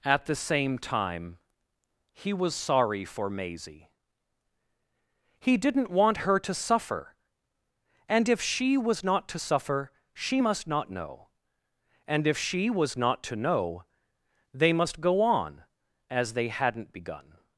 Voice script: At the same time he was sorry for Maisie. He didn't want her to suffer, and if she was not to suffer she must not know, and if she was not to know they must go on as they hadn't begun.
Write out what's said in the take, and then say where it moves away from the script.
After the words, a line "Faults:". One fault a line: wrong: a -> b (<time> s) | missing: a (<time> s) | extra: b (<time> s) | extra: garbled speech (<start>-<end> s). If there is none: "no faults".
At the same time he was sorry for Maisie. He didn't want her to suffer, and if she was not to suffer she must not know, and if she was not to know they must go on as they hadn't begun.
Faults:
no faults